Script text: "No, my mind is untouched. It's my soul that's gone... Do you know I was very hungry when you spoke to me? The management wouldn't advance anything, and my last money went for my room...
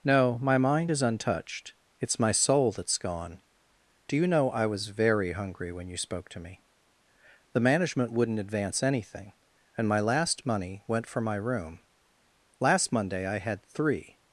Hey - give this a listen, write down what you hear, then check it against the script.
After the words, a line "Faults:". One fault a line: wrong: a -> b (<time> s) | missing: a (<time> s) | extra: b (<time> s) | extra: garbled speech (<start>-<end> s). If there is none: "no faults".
"No, my mind is untouched. It's my soul that's gone... Do you know I was very hungry when you spoke to me? The management wouldn't advance anything, and my last money went for my room... Last Monday I had three
Faults:
extra: Last Monday I had three (12.6 s)